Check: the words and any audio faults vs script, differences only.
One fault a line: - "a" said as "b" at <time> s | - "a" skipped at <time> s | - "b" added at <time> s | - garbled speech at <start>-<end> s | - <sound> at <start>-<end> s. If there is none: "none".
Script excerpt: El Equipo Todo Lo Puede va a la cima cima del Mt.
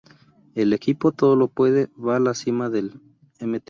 - "cima" skipped at 2.7 s